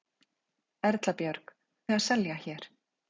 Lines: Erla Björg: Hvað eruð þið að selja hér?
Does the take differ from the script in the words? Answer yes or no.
yes